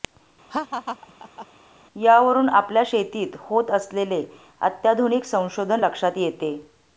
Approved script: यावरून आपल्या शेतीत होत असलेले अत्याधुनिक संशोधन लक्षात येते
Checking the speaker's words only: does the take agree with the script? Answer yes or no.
yes